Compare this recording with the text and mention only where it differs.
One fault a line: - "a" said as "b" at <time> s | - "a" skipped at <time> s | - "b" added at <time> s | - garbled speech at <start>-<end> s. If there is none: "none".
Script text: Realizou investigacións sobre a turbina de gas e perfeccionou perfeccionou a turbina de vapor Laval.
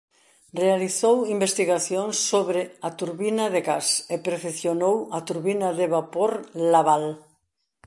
- "perfeccionou" skipped at 5.0 s